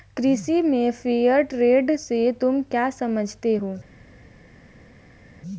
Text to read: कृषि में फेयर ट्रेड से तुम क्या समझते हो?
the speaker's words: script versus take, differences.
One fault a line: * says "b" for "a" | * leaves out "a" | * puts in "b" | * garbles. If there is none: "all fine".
all fine